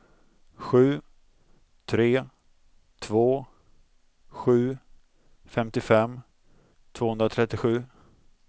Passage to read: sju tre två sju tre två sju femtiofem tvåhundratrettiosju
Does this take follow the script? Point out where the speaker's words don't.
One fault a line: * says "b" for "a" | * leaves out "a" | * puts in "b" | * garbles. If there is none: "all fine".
* leaves out "tre två sju"